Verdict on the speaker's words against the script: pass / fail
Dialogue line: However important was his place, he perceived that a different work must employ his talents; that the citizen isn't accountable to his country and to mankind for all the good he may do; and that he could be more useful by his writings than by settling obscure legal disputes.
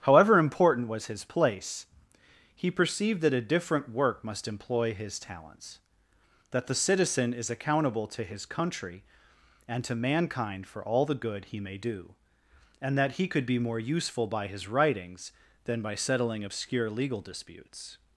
fail